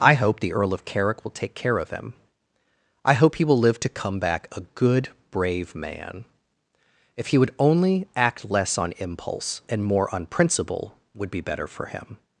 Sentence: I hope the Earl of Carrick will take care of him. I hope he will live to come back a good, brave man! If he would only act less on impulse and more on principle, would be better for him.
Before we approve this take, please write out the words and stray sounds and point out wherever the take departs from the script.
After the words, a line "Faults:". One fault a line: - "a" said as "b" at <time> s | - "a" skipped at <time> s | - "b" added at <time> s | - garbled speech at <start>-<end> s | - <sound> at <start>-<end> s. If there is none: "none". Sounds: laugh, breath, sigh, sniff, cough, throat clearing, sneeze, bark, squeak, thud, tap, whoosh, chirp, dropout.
I hope the Earl of Carrick will take care of him. I hope he will live to come back a good, brave man! If he would only act less on impulse and more on principle, would be better for him.
Faults:
none